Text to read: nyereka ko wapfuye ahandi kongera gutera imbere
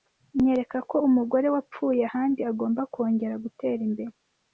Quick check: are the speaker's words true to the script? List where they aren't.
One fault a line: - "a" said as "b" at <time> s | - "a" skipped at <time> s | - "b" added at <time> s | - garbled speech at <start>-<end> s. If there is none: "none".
- "umugore" added at 1.1 s
- "agomba" added at 2.5 s